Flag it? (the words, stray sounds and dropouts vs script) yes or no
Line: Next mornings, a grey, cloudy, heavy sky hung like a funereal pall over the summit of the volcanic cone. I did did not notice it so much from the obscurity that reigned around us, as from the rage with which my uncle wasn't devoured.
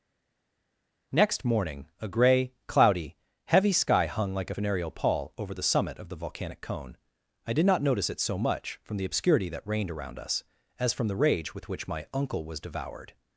yes